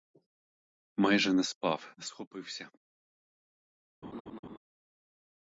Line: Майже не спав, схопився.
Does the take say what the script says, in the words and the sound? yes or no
no